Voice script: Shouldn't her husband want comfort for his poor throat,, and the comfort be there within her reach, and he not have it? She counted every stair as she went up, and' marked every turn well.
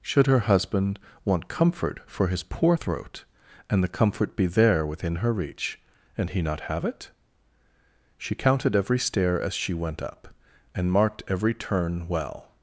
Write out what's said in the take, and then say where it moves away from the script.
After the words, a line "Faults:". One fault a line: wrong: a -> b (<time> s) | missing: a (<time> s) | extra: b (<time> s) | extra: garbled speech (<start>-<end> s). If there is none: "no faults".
Should her husband want comfort for his poor throat,, and the comfort be there within her reach, and he not have it? She counted every stair as she went up, and' marked every turn well.
Faults:
wrong: Shouldn't -> Should (0.0 s)